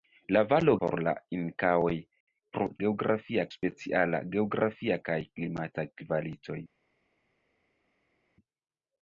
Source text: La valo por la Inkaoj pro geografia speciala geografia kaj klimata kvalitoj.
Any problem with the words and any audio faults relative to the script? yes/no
no